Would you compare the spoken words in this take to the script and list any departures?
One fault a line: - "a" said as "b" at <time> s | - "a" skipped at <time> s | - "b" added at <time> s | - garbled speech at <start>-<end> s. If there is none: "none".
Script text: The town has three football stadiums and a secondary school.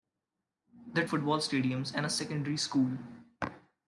- "town has three" skipped at 1.1 s